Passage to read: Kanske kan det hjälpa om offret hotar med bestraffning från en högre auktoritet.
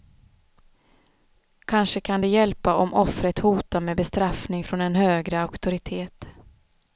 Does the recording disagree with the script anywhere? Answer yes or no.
no